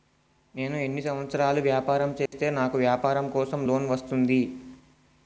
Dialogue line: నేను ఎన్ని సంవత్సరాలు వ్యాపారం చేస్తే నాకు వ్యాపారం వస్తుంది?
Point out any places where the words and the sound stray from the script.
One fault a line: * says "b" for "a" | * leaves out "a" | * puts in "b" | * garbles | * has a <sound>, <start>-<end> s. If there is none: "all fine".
* has a dropout, 2.3-2.3 s
* puts in "కోసం లోన్"